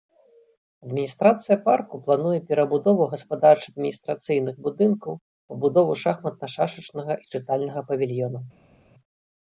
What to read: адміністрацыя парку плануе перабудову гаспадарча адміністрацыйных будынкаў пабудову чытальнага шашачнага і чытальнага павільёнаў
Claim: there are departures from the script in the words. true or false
true